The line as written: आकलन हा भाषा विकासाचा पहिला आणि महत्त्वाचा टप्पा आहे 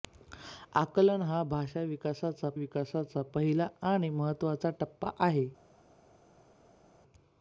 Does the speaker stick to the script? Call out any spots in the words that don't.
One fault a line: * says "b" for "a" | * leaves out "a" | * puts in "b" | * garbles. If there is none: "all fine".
* puts in "विकासाचा"